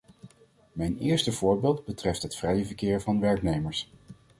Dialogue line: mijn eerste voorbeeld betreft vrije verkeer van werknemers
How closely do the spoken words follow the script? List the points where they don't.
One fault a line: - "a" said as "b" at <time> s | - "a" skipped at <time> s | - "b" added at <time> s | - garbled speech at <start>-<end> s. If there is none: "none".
- "het" added at 2.2 s